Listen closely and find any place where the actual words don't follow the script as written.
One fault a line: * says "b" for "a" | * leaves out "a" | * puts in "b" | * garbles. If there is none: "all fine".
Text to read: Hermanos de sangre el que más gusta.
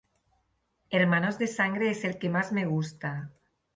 * puts in "es"
* puts in "me"